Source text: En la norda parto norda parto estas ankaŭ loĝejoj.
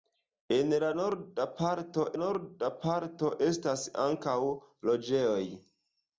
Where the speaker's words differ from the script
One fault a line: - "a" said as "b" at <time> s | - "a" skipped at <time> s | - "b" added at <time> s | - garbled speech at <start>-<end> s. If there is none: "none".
none